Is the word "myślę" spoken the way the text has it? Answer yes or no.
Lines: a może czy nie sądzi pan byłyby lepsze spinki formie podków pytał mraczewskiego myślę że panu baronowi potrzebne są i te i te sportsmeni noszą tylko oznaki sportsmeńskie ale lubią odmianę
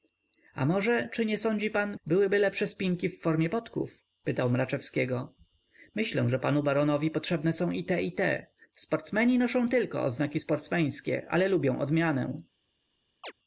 yes